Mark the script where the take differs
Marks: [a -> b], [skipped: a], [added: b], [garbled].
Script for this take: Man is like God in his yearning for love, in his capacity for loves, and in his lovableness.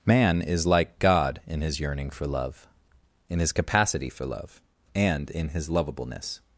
Man is like God in his yearning for love, in his capacity for [loves, -> love] and in his lovableness.